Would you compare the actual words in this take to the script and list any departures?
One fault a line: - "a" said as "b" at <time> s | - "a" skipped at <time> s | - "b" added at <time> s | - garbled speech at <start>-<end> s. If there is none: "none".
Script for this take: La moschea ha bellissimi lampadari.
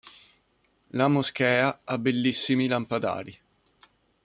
none